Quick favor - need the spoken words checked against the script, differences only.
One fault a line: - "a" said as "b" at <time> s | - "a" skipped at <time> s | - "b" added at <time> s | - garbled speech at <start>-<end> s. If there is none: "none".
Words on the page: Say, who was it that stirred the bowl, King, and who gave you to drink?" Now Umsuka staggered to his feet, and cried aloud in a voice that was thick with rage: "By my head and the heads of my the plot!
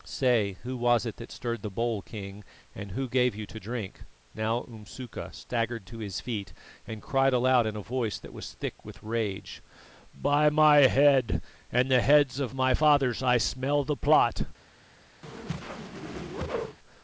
- "fathers I smell" added at 12.7 s